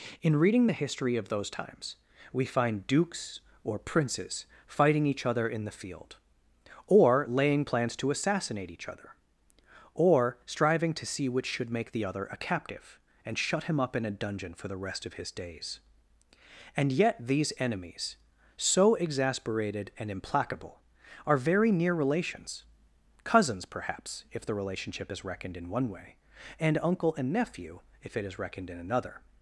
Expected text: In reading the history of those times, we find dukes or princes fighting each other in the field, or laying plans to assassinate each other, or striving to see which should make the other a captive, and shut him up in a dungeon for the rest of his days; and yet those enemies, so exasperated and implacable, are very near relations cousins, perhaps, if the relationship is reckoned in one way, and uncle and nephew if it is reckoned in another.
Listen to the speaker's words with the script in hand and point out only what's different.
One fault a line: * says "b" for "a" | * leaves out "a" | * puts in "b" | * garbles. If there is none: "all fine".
* says "these" for "those"